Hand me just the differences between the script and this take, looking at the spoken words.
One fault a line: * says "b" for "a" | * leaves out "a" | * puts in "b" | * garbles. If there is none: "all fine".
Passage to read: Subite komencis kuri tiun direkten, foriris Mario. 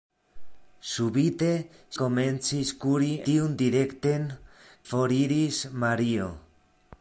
all fine